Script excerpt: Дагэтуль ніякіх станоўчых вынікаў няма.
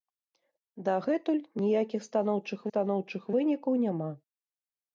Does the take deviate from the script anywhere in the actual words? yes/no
yes